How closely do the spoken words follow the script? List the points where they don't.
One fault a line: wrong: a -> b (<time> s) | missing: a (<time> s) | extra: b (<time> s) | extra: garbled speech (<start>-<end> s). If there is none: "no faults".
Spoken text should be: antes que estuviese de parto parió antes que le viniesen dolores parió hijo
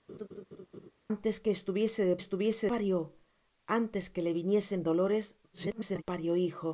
wrong: parto -> estuviese (2.2 s)
extra: garbled speech (5.5-6.0 s)